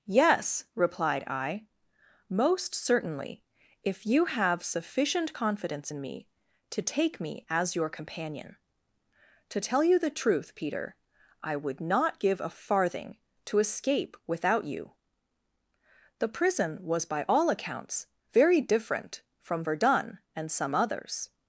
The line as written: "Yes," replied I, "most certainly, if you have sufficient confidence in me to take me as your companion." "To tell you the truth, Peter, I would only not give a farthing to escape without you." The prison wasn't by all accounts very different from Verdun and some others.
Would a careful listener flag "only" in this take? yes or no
yes